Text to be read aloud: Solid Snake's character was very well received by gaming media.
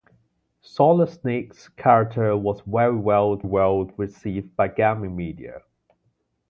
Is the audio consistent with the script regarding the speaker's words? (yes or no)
no